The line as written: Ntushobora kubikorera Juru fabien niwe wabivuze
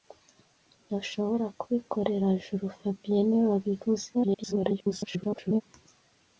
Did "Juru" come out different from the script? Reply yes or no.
no